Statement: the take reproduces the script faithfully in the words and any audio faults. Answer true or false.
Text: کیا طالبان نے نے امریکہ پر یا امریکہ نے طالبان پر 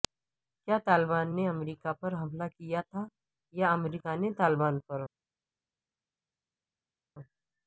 false